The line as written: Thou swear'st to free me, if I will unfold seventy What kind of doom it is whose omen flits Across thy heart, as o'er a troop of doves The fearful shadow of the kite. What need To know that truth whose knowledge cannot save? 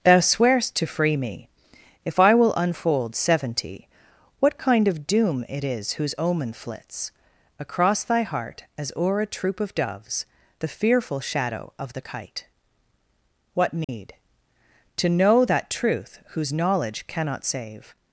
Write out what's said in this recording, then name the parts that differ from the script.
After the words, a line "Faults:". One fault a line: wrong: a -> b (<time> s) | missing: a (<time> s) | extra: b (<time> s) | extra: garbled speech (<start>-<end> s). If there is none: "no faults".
Thou swear'st to free me, if I will unfold seventy What kind of doom it is whose omen flits Across thy heart, as o'er a troop of doves The fearful shadow of the kite. What need To know that truth whose knowledge cannot save?
Faults:
no faults